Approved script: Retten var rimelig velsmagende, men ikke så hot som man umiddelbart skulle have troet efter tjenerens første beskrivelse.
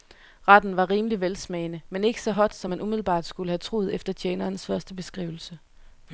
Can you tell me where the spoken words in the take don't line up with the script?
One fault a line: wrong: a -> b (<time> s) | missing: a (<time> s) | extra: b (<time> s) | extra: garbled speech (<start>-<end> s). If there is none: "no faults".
no faults